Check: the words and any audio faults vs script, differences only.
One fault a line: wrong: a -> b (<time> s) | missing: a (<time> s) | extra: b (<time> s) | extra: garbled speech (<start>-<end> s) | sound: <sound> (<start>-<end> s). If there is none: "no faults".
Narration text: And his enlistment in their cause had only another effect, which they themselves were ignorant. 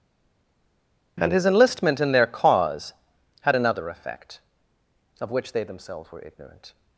missing: only (3.6 s)
extra: of (5.2 s)